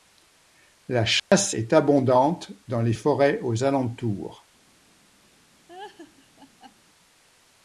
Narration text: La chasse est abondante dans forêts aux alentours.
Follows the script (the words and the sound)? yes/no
no